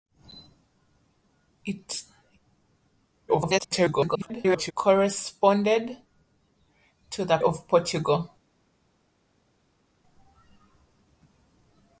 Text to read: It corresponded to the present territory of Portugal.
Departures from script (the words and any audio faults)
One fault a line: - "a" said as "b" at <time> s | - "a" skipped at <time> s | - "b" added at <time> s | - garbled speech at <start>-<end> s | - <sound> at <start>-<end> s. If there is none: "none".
- garbled speech at 3.3-4.7 s
- "present territory" skipped at 7.4 s